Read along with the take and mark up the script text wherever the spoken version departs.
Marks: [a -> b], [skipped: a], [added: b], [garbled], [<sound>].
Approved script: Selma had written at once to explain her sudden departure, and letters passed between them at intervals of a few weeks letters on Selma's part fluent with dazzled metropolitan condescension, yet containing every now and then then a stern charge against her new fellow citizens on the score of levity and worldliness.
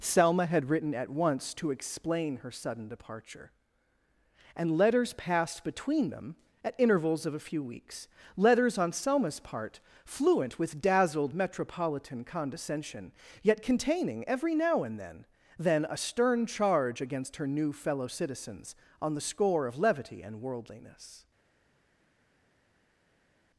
Selma had written at once to explain her sudden departure, and letters passed between them at intervals of a few weeks letters on Selma's part fluent with dazzled metropolitan condescension, yet containing every now and then then a stern charge against her new fellow citizens on the score of levity and worldliness.